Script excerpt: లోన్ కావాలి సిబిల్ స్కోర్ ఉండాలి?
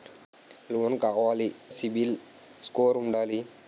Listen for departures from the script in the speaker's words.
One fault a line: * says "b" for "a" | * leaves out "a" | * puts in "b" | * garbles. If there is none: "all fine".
all fine